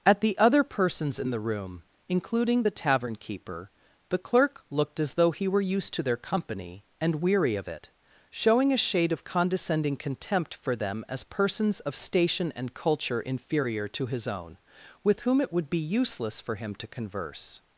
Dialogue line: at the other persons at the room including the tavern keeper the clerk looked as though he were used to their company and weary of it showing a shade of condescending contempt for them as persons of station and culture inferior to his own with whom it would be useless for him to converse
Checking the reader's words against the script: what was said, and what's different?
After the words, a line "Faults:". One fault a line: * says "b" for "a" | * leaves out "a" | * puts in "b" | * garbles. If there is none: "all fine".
at the other persons in the room including the tavern keeper the clerk looked as though he were used to their company and weary of it showing a shade of condescending contempt for them as persons of station and culture inferior to his own with whom it would be useless for him to converse
Faults:
* says "in" for "at"